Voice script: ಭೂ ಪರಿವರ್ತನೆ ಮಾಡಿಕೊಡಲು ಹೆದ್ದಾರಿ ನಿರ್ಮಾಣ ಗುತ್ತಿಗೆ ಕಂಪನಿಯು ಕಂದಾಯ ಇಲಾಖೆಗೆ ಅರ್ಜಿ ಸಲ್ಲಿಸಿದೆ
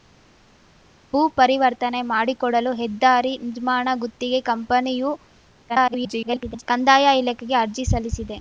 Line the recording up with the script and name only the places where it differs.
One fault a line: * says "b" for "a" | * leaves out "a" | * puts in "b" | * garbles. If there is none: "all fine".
* garbles